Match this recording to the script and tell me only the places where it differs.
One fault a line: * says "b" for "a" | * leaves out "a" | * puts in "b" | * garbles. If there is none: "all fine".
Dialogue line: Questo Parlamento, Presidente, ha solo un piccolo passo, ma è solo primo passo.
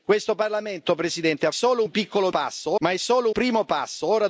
all fine